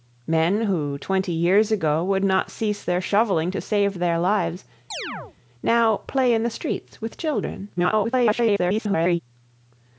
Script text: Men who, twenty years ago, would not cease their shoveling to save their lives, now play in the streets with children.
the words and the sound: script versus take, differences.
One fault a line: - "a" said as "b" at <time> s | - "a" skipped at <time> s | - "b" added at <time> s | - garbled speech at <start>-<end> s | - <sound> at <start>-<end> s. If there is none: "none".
- chirp at 4.9-5.4 s
- garbled speech at 7.8-9.2 s